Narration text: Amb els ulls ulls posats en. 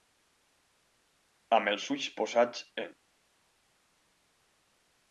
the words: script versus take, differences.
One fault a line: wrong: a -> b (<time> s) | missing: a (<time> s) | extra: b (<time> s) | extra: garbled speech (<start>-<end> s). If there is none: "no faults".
missing: ulls (2.1 s)